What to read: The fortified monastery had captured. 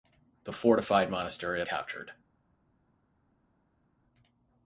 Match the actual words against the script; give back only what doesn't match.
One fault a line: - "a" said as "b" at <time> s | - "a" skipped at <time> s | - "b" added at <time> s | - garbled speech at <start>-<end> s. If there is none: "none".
none